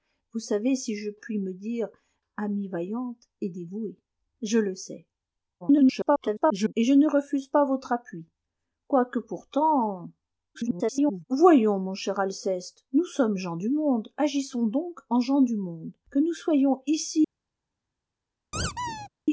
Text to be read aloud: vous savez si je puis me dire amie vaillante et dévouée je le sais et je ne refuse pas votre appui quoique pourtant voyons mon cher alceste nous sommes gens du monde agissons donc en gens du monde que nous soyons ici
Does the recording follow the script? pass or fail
fail